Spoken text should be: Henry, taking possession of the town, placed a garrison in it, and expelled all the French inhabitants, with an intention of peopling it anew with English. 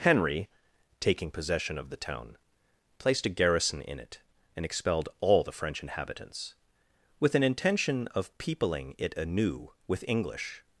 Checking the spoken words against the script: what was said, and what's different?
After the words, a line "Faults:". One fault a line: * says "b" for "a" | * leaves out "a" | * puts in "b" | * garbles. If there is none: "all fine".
Henry, taking possession of the town, placed a garrison in it, and expelled all the French inhabitants, with an intention of peopling it anew with English.
Faults:
all fine